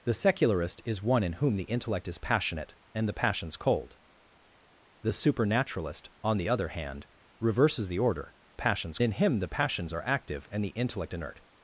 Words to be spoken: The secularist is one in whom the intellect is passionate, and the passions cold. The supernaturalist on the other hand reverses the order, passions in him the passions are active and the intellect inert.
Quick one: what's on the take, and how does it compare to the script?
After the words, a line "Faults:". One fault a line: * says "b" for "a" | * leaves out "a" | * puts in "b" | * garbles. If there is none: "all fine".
The secularist is one in whom the intellect is passionate, and the passions cold. The supernaturalist on the other hand reverses the order, passions in him the passions are active and the intellect inert.
Faults:
all fine